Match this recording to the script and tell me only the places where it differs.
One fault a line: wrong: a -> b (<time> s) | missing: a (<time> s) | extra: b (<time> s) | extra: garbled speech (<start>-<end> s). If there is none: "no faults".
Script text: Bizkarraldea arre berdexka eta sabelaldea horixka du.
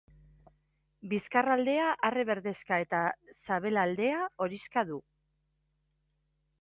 no faults